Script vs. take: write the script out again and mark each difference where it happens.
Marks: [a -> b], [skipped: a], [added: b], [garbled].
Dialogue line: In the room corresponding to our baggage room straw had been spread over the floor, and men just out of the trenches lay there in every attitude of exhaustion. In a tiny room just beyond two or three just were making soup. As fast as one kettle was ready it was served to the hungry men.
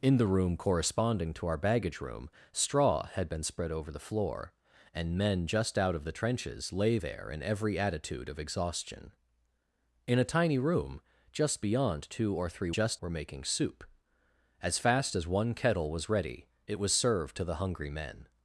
In the room corresponding to our baggage room straw had been spread over the floor, and men just out of the trenches lay there in every attitude of exhaustion. In a tiny room just beyond two or three just were making soup. As fast as one kettle was ready it was served to the hungry men.